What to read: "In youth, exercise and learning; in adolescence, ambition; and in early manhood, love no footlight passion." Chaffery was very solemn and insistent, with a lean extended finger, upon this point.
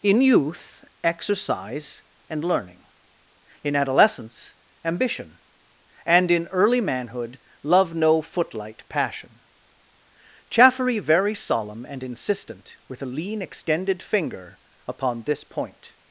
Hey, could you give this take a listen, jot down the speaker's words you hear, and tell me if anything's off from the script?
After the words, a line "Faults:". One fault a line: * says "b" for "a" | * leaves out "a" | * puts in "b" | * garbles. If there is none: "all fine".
"In youth, exercise and learning; in adolescence, ambition; and in early manhood, love no footlight passion." Chaffery very solemn and insistent, with a lean extended finger, upon this point.
Faults:
* leaves out "was"